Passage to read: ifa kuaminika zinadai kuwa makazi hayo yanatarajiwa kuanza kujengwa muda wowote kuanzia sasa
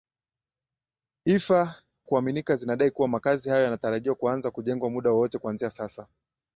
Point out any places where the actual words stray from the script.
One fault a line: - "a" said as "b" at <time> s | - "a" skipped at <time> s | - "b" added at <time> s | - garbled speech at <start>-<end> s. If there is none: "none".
none